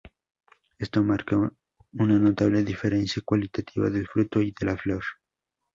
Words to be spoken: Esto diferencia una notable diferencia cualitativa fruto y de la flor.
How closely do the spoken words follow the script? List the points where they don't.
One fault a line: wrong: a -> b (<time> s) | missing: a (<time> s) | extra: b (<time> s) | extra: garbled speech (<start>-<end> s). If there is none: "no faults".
wrong: diferencia -> marca (1.0 s)
extra: del (3.9 s)